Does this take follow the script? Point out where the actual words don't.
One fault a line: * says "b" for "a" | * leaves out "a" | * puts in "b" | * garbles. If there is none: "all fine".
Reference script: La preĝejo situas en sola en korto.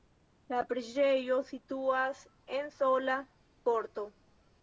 * leaves out "en"